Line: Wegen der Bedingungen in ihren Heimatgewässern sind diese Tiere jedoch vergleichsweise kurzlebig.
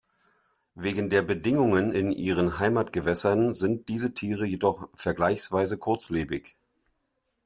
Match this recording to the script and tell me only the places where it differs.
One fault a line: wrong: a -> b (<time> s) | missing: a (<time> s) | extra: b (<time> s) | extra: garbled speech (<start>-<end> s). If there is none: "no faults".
no faults